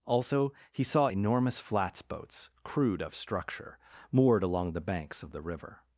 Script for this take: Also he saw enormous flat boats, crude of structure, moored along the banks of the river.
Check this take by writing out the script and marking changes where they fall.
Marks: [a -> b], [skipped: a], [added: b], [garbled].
Also he saw enormous [flat -> flats] boats, crude of structure, moored along the banks of the river.